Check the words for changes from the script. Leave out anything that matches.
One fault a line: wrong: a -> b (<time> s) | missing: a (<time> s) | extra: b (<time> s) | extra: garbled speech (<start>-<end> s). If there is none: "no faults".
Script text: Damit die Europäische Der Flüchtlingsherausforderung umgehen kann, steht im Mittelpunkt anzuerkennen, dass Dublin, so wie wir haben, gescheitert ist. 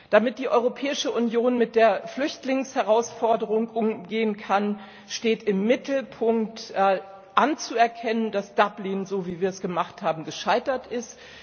extra: Union mit (1.1 s)
extra: es gemacht (9.5 s)